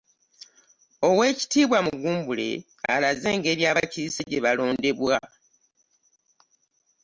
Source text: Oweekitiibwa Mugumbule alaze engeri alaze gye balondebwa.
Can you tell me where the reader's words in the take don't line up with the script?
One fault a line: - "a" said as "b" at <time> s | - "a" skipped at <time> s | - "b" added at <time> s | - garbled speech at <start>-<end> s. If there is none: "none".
- "alaze" said as "abakiise" at 3.7 s